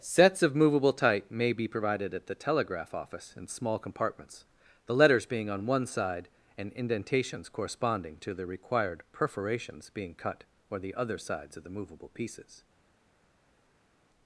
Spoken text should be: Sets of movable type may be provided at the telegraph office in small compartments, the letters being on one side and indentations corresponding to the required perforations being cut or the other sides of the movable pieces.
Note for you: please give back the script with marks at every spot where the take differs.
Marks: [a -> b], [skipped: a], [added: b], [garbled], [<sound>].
Sets of movable type may be provided at the telegraph office in small compartments, the letters being on one side and indentations corresponding to the required perforations being cut or the other sides of the movable pieces.